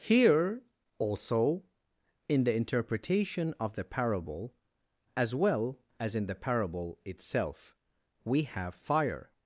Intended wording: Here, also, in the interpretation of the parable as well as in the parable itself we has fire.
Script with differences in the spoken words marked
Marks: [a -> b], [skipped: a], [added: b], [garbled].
Here, also, in the interpretation of the parable as well as in the parable itself we [has -> have] fire.